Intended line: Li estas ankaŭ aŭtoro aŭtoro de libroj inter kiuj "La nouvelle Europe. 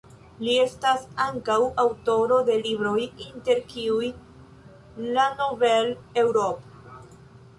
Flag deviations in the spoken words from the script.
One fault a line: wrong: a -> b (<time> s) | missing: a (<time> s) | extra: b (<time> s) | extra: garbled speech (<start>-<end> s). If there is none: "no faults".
missing: aŭtoro (2.4 s)